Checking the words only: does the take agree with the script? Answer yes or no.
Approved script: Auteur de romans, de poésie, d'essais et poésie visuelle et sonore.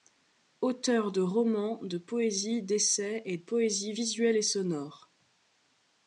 yes